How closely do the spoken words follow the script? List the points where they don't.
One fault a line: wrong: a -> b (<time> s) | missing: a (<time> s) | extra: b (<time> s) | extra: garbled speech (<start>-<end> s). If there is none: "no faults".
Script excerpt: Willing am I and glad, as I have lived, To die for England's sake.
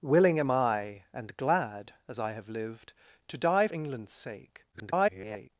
missing: for (3.7 s)
extra: garbled speech (4.7-5.5 s)